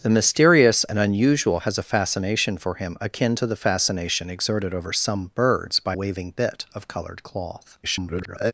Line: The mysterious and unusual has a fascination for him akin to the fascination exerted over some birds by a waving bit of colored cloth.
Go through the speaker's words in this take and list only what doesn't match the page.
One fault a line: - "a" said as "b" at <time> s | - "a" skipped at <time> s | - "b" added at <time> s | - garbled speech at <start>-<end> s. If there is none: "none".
- "a" skipped at 5.9 s
- garbled speech at 7.8-8.5 s